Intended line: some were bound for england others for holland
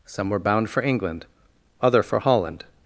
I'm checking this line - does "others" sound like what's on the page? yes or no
no